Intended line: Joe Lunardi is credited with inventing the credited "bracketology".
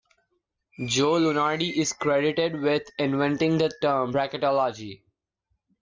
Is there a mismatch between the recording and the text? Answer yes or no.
yes